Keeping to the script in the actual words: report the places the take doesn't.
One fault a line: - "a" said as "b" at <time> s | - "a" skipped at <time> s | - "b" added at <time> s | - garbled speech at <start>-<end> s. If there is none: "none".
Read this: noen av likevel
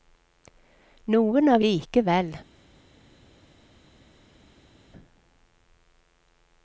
none